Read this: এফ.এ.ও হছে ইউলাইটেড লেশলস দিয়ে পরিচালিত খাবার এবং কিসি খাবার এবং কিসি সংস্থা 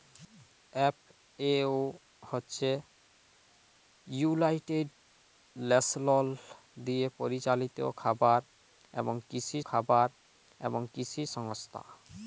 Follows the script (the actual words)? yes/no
yes